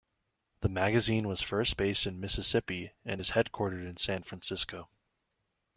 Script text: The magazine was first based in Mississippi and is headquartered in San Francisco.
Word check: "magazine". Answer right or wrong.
right